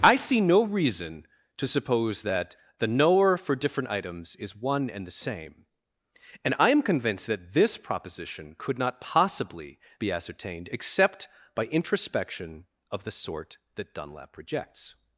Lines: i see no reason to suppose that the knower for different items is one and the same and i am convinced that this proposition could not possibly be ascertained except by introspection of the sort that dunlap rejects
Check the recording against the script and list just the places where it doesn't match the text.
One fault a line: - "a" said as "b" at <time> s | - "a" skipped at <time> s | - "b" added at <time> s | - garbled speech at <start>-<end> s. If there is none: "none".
none